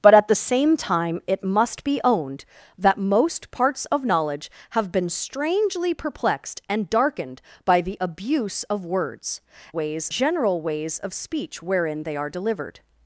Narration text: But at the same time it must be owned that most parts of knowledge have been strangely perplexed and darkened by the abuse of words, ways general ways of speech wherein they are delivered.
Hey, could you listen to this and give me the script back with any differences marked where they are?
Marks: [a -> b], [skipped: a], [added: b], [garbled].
But at the same time it must be owned that most parts of knowledge have been strangely perplexed and darkened by the abuse of words, ways general ways of speech wherein they are delivered.